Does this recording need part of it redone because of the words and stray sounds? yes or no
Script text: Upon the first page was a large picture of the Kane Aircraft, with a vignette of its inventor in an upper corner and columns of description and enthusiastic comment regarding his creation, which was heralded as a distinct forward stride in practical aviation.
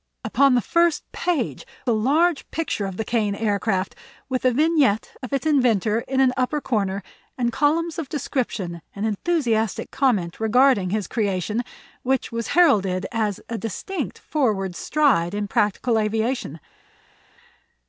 yes